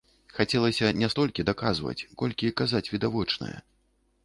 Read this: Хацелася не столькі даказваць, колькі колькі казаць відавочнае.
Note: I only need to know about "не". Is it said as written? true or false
true